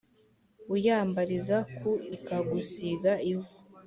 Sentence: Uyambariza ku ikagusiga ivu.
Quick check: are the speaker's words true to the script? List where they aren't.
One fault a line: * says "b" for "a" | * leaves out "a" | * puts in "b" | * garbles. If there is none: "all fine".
all fine